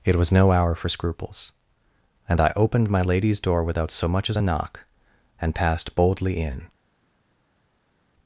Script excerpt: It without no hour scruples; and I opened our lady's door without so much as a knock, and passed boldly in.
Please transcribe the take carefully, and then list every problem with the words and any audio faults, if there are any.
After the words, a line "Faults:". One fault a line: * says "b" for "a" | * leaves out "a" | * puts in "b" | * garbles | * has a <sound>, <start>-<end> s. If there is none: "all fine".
It was no hour for scruples; and I opened my lady's door without so much as a knock, and passed boldly in.
Faults:
* says "was" for "without"
* puts in "for"
* says "my" for "our"